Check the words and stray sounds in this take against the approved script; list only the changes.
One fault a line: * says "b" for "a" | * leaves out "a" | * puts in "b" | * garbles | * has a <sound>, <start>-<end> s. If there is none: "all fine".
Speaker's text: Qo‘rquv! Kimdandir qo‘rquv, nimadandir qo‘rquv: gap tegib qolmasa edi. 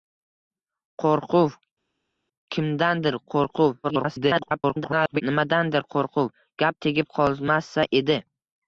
* garbles